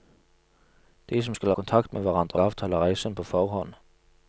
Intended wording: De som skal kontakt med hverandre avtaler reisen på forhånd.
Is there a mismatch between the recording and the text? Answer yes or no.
no